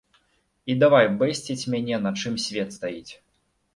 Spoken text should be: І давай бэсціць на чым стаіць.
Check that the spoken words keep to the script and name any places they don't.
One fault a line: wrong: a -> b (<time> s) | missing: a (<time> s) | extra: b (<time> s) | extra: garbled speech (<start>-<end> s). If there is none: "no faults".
extra: мяне (1.7 s)
extra: свет (2.5 s)